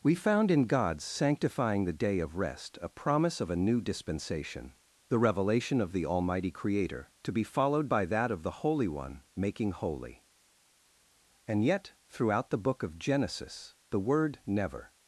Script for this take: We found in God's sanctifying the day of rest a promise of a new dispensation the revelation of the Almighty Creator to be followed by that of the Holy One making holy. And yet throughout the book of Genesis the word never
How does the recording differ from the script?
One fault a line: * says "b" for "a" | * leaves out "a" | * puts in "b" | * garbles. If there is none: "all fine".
all fine